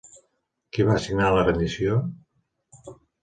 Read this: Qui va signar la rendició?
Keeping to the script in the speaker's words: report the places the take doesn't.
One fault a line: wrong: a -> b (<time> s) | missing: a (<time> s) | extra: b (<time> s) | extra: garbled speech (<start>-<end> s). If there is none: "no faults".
no faults